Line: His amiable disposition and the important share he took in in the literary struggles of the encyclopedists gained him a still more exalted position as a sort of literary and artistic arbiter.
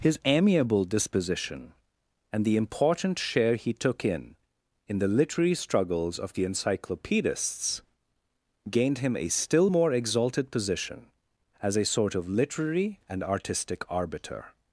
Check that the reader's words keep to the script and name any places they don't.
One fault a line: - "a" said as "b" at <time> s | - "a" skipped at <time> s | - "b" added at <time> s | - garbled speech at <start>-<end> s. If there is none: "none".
none